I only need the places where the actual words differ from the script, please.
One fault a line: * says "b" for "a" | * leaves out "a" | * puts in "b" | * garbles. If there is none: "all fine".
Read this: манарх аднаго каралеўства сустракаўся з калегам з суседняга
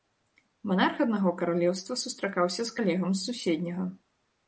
all fine